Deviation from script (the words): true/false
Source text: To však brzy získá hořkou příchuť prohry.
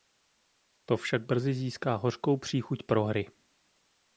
false